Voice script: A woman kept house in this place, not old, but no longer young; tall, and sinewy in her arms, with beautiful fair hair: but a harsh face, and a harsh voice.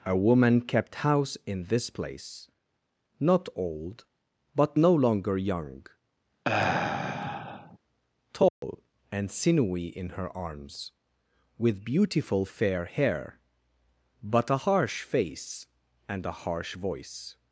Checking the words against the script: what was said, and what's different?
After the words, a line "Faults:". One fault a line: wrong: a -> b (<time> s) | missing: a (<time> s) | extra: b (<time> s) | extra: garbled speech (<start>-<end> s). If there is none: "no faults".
A woman kept house in this place, not old, but no longer young; tall, and sinewy in her arms, with beautiful fair hair: but a harsh face, and a harsh voice.
Faults:
no faults